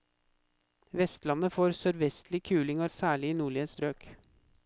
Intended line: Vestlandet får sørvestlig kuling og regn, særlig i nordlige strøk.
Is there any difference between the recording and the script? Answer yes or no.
yes